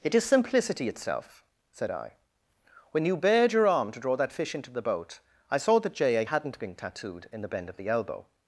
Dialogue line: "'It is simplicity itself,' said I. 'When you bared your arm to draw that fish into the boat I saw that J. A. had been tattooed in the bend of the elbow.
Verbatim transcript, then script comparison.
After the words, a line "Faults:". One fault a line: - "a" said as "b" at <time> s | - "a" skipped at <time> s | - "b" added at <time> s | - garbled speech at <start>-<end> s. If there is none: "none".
"'It is simplicity itself,' said I. 'When you bared your arm to draw that fish into the boat I saw that J. A. hadn't been tattooed in the bend of the elbow.
Faults:
- "had" said as "hadn't" at 6.2 s